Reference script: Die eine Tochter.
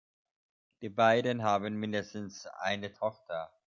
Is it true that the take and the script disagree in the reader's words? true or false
true